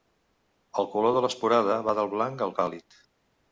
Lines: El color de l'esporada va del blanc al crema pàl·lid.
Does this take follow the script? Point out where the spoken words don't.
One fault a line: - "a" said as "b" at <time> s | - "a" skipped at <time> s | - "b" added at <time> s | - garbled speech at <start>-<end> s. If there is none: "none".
- "crema" skipped at 2.5 s